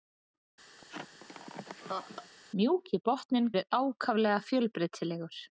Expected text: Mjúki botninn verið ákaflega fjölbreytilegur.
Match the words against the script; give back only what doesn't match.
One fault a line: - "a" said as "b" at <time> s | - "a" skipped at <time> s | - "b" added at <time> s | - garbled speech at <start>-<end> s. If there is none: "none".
none